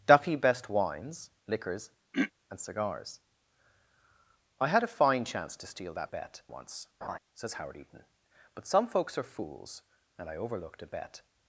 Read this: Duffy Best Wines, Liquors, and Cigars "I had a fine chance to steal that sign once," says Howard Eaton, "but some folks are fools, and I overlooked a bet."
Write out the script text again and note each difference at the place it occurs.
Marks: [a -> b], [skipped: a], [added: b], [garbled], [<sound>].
Duffy Best Wines, Liquors, [throat clearing] and Cigars "I had a fine chance to steal that [sign -> bet] once," [laugh] says Howard Eaton, "but some folks are fools, and I overlooked a bet."